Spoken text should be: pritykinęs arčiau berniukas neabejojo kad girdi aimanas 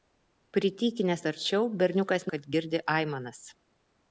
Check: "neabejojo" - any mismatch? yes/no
yes